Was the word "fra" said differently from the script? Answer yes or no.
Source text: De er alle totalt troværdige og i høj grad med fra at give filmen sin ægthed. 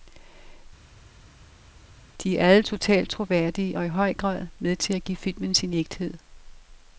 yes